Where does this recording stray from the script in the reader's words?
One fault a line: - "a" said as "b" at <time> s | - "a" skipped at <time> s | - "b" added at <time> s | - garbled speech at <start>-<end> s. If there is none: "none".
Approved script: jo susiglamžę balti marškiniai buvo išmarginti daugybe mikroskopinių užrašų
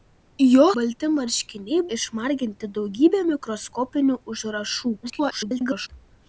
- "susiglamžę" skipped at 0.6 s
- "buvo" skipped at 1.8 s
- garbled speech at 5.0-5.9 s